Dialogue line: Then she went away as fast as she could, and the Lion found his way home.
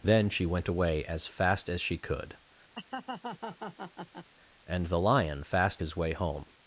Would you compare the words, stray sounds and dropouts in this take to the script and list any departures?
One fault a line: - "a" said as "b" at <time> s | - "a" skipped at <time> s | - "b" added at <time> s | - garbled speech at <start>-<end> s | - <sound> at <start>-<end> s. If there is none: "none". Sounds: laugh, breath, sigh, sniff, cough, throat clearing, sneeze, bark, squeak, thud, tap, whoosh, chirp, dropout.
- laugh at 2.7-4.3 s
- "found" said as "fast" at 5.4 s